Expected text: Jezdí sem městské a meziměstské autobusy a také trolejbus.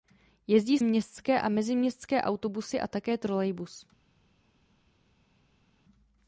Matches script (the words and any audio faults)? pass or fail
fail